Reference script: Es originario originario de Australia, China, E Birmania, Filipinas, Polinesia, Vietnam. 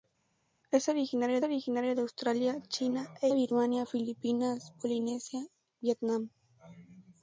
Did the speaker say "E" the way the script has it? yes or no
yes